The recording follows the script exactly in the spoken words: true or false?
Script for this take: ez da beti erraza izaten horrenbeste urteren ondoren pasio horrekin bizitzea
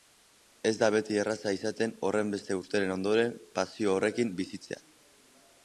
true